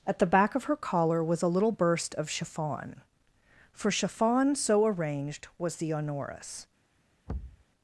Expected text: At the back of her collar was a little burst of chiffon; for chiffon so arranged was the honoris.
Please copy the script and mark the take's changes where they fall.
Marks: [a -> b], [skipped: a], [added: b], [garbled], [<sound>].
At the back of her collar was a little burst of chiffon; for chiffon so arranged was the honoris. [thud]